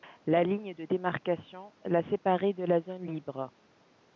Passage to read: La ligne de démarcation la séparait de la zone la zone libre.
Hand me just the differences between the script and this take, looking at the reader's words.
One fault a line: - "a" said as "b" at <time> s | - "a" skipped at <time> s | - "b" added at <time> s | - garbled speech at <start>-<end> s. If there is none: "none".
- "la zone" skipped at 3.1 s